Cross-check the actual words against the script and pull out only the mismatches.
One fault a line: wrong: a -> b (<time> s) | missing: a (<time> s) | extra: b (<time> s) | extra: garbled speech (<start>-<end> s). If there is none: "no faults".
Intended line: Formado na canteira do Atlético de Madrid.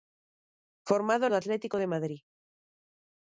missing: na canteira (1.2 s)